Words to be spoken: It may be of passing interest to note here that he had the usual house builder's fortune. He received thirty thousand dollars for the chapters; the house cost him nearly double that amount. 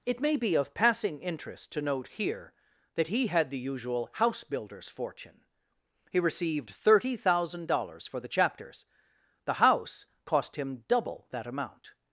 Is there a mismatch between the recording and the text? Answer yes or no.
yes